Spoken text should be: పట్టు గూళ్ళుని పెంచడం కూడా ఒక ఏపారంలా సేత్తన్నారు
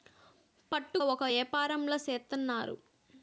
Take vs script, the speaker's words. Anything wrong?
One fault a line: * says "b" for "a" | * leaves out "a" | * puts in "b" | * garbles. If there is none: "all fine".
* leaves out "గూళ్ళుని పెంచడం కూడా"